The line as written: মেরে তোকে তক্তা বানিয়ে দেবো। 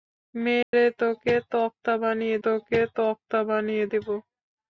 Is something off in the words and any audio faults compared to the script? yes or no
yes